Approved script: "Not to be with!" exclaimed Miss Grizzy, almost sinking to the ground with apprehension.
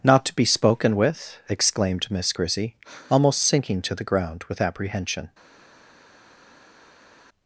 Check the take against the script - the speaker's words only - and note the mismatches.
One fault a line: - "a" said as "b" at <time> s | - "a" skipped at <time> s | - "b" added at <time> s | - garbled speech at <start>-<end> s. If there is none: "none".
- "spoken" added at 0.5 s